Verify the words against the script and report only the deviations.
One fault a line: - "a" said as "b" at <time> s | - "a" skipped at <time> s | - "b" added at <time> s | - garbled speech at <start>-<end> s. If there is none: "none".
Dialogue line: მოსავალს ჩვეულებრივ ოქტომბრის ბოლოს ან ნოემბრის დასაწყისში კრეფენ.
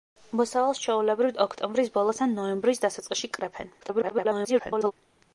- garbled speech at 3.8-4.9 s